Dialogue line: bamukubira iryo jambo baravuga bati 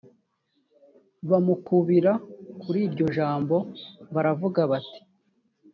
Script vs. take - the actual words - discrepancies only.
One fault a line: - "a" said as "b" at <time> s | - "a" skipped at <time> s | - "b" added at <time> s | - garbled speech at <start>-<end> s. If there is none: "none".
- "kuri" added at 2.6 s